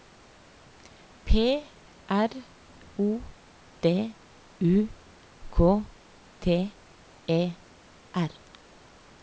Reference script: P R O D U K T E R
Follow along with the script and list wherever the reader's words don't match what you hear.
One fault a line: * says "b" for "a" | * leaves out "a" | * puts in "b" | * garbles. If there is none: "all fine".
all fine